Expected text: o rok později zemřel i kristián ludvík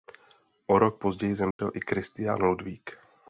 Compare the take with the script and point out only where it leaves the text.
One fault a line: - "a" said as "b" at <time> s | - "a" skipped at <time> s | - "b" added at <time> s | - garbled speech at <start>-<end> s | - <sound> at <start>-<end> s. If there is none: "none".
- dropout at 1.5-1.6 s